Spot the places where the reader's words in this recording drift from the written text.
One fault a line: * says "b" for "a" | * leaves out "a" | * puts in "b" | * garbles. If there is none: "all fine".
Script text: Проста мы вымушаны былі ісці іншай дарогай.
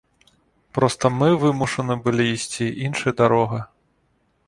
all fine